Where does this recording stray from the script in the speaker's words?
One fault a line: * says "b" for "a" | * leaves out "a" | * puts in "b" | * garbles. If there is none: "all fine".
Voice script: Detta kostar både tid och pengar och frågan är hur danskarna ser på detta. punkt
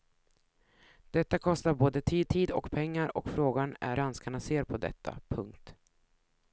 * puts in "tid"
* leaves out "hur"